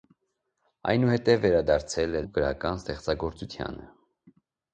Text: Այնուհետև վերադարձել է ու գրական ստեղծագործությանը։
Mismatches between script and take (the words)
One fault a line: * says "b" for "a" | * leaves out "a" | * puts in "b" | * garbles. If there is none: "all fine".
all fine